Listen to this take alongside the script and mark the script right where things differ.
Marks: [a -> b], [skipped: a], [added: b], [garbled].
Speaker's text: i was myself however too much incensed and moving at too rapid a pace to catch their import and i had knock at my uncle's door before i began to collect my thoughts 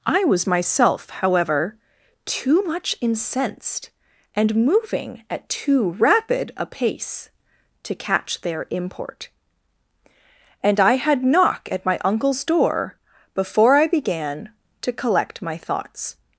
i was myself however too much incensed and moving at too rapid a pace to catch their import and i had knock at my uncle's door before i began to collect my thoughts